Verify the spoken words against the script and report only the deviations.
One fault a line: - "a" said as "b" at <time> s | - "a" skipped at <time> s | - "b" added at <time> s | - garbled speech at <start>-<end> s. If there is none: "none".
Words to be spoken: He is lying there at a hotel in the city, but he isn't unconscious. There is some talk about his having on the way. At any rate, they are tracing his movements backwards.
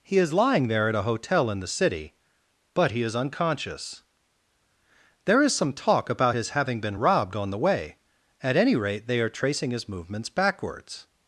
- "isn't" said as "is" at 3.0 s
- "been robbed" added at 6.8 s